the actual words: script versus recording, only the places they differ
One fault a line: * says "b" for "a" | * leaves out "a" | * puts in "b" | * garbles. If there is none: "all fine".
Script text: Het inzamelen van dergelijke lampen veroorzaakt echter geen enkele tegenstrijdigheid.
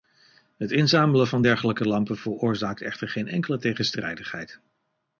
all fine